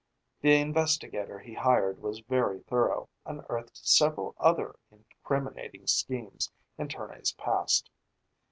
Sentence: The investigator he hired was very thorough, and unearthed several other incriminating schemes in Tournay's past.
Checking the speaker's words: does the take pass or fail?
fail